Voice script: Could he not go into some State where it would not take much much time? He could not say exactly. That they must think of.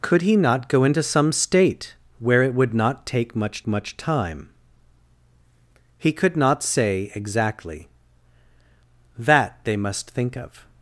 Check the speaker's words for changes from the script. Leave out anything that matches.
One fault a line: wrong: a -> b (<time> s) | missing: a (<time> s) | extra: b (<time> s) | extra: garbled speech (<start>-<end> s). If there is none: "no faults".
no faults